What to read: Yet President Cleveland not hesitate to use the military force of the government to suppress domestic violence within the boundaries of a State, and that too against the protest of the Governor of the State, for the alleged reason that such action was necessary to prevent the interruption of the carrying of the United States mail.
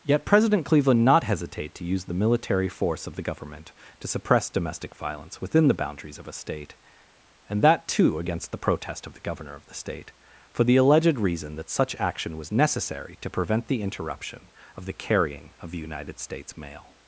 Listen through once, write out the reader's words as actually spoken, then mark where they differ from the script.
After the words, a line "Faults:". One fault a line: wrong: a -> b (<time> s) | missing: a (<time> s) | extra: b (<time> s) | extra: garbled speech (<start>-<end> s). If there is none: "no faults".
Yet President Cleveland not hesitate to use the military force of the government to suppress domestic violence within the boundaries of a State, and that too against the protest of the Governor of the State, for the alleged reason that such action was necessary to prevent the interruption of the carrying of the United States mail.
Faults:
no faults